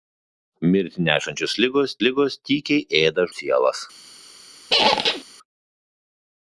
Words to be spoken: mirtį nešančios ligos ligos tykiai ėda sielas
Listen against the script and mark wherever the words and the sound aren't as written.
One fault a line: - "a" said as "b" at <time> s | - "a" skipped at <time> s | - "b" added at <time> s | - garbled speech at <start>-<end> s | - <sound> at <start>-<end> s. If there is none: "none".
- squeak at 4.7-5.2 s